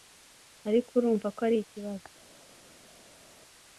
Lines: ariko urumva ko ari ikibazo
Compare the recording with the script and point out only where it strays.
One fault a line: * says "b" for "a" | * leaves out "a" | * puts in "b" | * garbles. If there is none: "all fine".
all fine